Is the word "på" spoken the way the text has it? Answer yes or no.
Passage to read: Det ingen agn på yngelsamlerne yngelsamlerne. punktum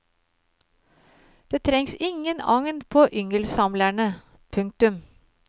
yes